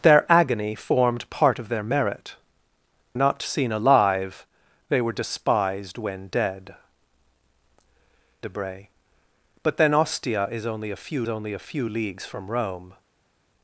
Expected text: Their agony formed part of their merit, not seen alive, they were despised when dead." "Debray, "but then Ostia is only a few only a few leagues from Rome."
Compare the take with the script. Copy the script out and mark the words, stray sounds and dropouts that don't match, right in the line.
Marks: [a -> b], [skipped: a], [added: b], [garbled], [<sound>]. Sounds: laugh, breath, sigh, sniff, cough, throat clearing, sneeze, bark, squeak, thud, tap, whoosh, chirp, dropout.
Their agony formed part of their merit, not seen alive, they were despised when dead." "Debray, "but then Ostia is only a few only a few leagues from Rome."